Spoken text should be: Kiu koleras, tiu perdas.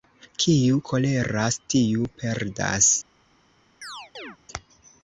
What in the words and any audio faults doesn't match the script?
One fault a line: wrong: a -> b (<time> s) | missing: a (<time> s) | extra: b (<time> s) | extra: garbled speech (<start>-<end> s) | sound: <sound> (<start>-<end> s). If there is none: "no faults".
sound: chirp (3.8-4.4 s)